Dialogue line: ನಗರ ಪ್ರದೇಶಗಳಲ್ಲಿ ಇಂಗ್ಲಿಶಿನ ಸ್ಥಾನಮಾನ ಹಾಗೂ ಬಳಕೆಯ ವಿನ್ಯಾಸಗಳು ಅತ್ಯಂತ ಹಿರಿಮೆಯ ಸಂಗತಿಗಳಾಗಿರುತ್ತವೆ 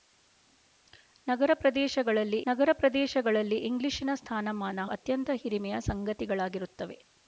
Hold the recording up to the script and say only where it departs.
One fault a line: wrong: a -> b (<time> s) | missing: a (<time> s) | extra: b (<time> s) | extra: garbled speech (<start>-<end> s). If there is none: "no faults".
extra: ನಗರ ಪ್ರದೇಶಗಳಲ್ಲಿ (2.5 s)
missing: ಹಾಗೂ ಬಳಕೆಯ ವಿನ್ಯಾಸಗಳು (4.8 s)